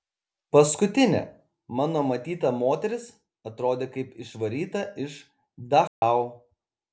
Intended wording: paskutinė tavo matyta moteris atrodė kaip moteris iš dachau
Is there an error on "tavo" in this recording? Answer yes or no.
yes